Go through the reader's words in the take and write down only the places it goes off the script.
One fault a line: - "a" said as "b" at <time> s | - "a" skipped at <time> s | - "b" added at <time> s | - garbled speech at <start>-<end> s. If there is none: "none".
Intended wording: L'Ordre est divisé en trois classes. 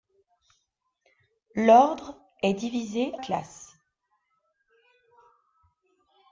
- "en trois" skipped at 3.1 s